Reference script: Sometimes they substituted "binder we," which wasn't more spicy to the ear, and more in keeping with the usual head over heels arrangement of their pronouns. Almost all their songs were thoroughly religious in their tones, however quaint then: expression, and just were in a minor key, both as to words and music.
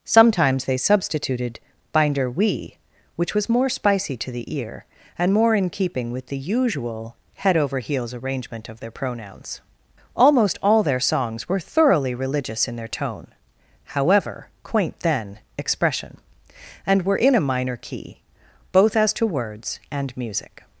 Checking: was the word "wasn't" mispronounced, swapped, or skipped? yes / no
yes